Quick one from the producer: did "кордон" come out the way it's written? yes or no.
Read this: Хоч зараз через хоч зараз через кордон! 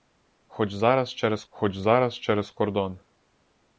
yes